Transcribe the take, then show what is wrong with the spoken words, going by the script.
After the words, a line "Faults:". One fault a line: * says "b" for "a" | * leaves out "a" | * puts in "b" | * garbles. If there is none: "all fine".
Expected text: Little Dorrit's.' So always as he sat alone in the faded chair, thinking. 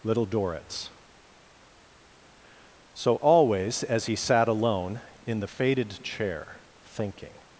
Little Dorrit's.' So always as he sat alone in the faded chair, thinking.
Faults:
all fine